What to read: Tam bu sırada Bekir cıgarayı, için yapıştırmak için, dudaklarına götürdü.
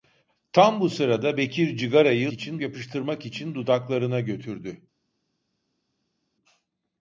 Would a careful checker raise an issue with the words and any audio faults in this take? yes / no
no